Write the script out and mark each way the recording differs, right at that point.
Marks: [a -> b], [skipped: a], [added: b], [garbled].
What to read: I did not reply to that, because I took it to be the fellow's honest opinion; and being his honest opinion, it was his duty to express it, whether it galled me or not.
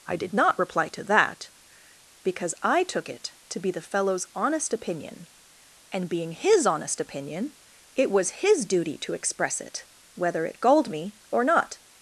I did not reply to that, because I took it to be the fellow's honest opinion; and being his honest opinion, it was his duty to express it, whether it galled me or not.